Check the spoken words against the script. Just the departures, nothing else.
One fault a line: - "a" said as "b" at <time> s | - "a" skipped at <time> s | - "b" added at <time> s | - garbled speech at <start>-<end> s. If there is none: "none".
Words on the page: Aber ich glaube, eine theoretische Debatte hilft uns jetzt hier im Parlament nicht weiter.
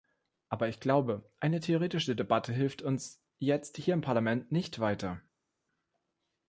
none